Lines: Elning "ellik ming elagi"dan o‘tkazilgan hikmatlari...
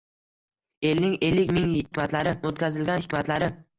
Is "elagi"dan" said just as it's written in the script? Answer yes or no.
no